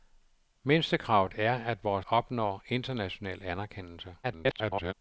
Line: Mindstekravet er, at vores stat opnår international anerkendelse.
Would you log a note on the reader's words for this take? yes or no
yes